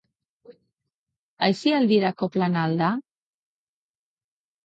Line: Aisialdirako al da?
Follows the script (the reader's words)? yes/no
no